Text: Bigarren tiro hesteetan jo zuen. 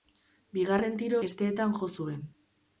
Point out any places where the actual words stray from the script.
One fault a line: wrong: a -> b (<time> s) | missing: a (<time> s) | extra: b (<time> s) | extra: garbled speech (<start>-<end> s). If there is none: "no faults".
no faults